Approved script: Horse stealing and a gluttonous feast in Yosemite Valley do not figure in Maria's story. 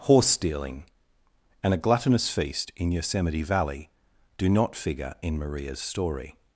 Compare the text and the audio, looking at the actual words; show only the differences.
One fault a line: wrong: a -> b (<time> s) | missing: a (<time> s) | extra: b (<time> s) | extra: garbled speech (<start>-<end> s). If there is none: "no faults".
no faults